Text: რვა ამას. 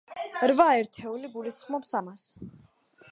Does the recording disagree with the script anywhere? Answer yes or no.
yes